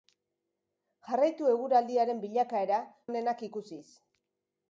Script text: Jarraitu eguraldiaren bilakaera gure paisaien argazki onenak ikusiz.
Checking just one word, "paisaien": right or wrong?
wrong